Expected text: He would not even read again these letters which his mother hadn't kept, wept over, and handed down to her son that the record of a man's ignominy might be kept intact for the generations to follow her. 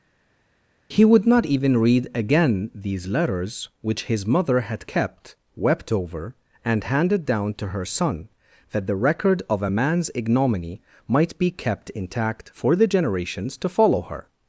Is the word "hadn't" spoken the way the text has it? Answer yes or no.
no